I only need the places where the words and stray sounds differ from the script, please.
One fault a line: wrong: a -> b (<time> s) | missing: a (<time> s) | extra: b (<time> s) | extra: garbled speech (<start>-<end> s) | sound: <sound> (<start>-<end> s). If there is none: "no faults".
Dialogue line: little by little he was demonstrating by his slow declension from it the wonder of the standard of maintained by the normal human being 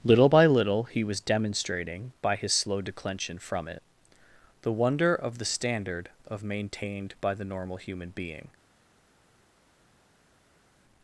no faults